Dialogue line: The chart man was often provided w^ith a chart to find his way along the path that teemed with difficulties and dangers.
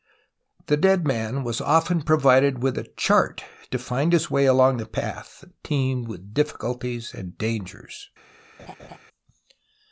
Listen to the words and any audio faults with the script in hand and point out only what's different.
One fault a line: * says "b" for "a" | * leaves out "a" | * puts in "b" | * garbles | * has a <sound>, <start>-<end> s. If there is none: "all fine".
* says "dead" for "chart"
* has a laugh, 8.6-9.0 s